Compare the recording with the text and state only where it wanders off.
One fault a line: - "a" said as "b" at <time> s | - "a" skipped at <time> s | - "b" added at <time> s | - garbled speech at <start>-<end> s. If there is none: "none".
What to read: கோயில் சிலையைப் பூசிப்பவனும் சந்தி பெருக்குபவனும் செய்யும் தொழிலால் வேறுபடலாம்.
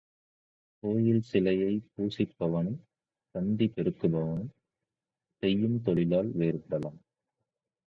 none